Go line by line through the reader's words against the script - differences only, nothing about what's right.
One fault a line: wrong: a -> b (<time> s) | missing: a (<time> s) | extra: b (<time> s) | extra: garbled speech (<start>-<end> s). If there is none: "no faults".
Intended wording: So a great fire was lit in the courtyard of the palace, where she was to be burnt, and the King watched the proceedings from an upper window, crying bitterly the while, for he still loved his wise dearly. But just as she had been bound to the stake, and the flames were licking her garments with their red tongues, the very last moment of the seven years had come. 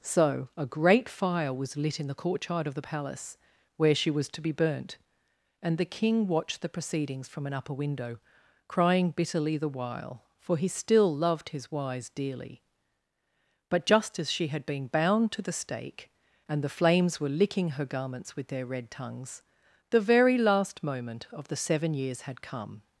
no faults